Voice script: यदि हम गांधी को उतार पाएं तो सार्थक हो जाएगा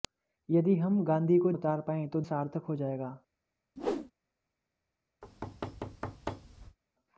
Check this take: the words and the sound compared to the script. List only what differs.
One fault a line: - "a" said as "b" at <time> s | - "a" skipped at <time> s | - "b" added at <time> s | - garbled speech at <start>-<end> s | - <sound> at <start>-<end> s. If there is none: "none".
- whoosh at 3.8-4.1 s
- thud at 5.2-6.8 s